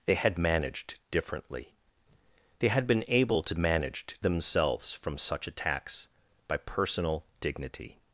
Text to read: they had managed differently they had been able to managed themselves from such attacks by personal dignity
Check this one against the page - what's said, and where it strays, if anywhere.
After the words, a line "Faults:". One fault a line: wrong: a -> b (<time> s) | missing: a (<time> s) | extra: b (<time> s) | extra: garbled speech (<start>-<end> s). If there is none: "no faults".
they had managed differently they had been able to managed themselves from such attacks by personal dignity
Faults:
no faults